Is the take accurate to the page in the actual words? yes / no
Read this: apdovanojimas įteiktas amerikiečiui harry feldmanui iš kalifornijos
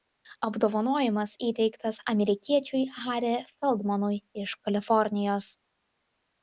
yes